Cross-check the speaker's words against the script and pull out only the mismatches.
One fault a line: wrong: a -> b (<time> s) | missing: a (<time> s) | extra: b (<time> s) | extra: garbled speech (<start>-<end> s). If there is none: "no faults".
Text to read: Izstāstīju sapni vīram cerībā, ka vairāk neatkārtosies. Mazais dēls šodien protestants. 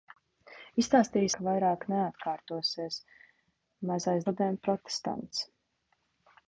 missing: sapni vīram cerībā (1.3 s)
missing: dēls (4.3 s)